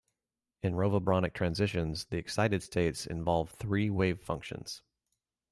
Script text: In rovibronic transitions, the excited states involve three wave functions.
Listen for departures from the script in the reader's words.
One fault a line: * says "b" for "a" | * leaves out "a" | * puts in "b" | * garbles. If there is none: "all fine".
all fine